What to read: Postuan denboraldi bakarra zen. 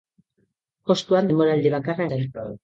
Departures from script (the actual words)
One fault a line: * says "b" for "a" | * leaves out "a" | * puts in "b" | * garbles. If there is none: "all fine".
all fine